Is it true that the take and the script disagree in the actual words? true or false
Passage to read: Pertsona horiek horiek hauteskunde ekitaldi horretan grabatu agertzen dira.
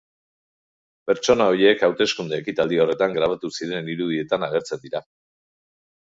true